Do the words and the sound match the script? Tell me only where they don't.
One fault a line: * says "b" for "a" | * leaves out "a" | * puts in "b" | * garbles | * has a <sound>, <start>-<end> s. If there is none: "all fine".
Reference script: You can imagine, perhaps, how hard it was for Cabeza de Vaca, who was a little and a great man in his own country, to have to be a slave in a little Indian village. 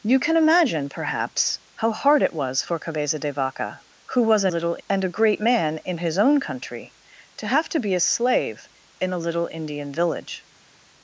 all fine